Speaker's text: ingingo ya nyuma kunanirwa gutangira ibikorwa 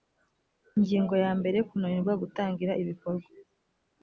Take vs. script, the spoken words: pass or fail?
fail